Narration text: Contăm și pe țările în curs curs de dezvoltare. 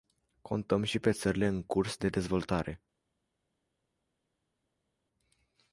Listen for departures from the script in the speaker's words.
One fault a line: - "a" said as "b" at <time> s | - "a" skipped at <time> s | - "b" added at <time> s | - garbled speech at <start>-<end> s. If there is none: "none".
- "curs" skipped at 2.0 s